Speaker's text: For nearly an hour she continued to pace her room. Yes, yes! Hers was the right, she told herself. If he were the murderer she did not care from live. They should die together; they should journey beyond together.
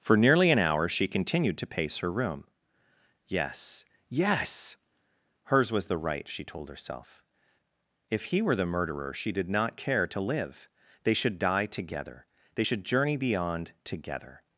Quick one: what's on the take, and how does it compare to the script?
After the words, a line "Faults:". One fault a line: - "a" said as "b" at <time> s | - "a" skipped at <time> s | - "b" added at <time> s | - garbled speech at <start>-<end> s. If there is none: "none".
For nearly an hour she continued to pace her room. Yes, yes! Hers was the right, she told herself. If he were the murderer she did not care to live. They should die together; they should journey beyond together.
Faults:
- "from" said as "to" at 10.1 s